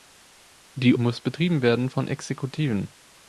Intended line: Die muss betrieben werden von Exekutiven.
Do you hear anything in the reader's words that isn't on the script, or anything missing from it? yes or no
no